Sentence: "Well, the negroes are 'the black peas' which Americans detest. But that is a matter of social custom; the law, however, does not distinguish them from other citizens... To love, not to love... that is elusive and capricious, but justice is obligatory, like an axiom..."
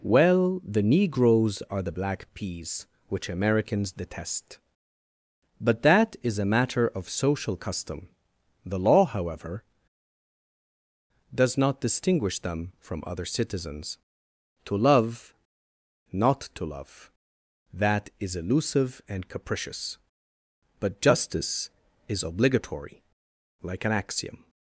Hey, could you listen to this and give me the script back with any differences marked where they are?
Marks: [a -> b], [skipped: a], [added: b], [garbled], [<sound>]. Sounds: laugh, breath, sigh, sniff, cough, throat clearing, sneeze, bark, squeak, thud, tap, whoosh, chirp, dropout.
"Well, the negroes are 'the black peas' which Americans detest. But that is a matter of social custom; the law, however, does not distinguish them from other citizens... To love, not to love... that is elusive and capricious, but justice is obligatory, like an axiom..."